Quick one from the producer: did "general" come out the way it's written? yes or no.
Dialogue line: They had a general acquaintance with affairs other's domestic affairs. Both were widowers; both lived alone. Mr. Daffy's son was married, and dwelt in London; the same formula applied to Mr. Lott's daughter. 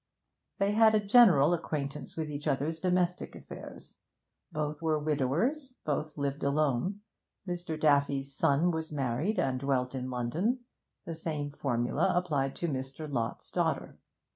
yes